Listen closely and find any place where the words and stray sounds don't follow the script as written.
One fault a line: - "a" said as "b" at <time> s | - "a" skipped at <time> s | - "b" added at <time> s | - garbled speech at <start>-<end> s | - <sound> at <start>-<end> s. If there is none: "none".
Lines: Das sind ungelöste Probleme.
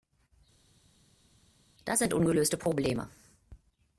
none